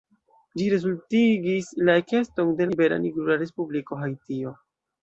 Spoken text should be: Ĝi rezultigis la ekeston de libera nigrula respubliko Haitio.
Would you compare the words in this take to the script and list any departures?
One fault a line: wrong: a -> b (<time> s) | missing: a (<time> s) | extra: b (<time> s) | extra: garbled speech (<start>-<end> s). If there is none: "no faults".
no faults